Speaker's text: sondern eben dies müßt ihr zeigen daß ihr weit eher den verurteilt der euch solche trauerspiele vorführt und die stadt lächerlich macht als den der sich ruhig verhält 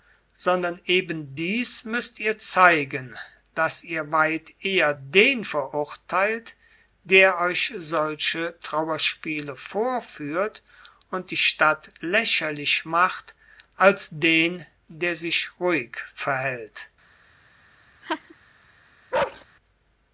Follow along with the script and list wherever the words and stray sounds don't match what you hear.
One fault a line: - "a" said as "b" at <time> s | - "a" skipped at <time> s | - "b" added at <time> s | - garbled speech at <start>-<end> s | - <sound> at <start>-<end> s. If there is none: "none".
- laugh at 18.0-18.4 s
- bark at 19.1-19.4 s